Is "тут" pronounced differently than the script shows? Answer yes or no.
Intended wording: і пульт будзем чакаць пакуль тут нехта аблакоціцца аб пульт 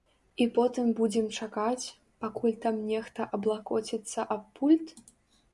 yes